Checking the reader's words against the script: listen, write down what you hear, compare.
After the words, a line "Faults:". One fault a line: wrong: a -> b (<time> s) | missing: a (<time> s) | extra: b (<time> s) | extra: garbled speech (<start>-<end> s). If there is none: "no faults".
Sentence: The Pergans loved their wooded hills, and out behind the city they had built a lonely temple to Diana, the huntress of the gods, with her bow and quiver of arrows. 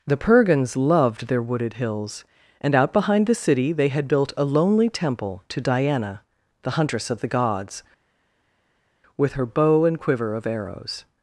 The Pergans loved their wooded hills, and out behind the city they had built a lonely temple to Diana, the huntress of the gods, with her bow and quiver of arrows.
Faults:
no faults